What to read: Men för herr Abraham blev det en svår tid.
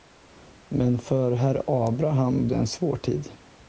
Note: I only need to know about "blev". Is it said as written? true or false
false